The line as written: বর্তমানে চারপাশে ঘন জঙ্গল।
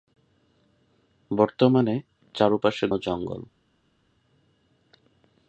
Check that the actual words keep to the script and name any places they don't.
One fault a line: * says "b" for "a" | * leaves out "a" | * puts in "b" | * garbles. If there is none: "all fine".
* leaves out "ঘন"